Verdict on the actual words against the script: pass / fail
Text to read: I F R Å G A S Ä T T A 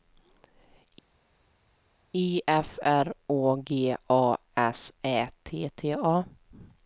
pass